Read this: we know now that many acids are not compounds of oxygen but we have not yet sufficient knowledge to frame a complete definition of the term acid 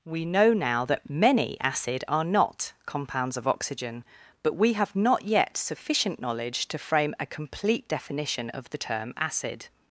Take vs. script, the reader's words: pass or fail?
fail